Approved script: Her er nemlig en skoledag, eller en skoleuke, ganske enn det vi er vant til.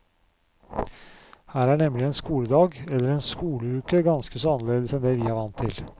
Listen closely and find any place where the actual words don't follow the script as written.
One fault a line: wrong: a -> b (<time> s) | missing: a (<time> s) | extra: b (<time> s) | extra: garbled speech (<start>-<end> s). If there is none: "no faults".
extra: så annerledes (4.4 s)